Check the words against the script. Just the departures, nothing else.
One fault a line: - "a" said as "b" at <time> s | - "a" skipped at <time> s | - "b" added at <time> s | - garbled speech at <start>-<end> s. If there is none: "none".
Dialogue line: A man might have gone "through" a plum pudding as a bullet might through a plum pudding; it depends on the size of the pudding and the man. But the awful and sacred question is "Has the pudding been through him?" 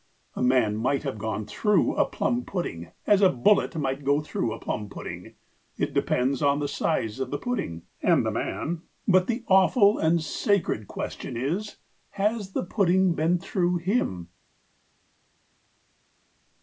- "go" added at 4.0 s